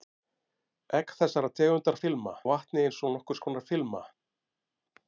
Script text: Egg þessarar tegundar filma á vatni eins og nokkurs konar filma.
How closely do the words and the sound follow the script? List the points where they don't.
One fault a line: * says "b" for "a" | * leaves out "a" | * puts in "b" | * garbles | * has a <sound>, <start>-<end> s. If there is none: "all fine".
all fine